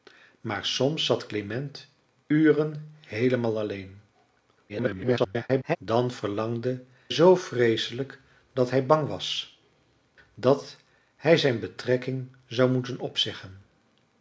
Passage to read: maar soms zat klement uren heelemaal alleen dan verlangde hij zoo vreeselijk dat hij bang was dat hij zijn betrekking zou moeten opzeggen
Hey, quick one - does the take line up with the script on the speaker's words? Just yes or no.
no